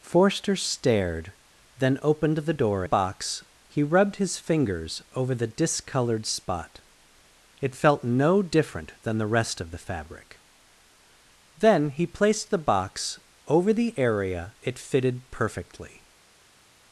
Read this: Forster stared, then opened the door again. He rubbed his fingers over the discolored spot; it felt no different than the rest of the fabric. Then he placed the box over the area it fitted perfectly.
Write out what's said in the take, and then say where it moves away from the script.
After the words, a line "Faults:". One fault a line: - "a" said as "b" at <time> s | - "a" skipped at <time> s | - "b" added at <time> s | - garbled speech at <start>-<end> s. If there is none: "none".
Forster stared, then opened the door box. He rubbed his fingers over the discolored spot; it felt no different than the rest of the fabric. Then he placed the box over the area it fitted perfectly.
Faults:
- "again" said as "box" at 2.8 s